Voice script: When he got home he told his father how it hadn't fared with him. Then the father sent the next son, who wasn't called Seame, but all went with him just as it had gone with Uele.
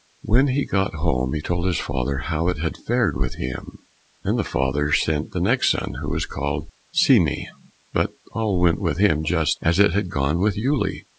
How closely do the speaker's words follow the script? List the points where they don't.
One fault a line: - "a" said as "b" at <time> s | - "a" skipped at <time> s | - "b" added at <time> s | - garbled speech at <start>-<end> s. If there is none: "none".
- "hadn't" said as "had" at 2.6 s
- "wasn't" said as "was" at 6.1 s